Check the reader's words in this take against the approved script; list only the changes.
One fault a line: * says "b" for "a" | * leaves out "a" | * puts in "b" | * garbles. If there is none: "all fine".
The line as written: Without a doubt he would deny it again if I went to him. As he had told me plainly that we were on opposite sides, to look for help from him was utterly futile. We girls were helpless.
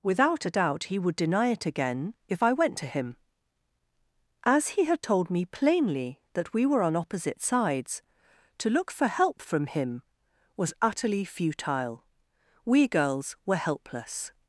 all fine